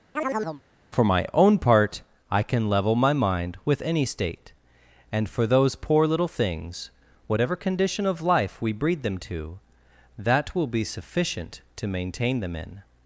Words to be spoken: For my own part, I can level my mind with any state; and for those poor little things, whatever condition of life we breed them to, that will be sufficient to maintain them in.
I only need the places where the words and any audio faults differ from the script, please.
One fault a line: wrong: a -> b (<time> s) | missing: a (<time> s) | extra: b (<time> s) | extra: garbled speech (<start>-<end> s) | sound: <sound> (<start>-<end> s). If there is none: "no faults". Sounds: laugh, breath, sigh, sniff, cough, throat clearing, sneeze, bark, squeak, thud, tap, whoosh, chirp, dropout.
sound: chirp (0.2-0.6 s)